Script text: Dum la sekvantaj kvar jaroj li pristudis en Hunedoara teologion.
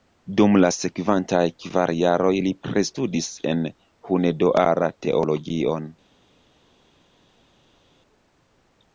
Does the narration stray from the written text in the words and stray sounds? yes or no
no